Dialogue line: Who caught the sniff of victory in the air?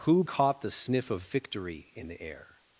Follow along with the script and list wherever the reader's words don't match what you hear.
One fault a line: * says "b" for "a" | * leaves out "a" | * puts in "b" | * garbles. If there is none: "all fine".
all fine